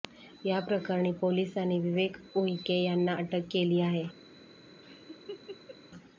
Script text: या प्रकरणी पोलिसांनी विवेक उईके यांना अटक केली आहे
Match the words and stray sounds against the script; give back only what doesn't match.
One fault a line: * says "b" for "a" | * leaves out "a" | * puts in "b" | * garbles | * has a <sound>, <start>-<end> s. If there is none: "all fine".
* has a laugh, 4.8-5.8 s